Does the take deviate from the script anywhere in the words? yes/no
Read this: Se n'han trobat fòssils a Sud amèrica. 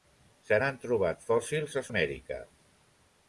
yes